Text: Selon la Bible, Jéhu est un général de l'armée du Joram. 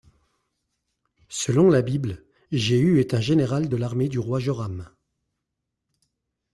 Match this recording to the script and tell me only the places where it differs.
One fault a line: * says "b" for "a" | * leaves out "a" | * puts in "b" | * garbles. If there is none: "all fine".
* puts in "roi"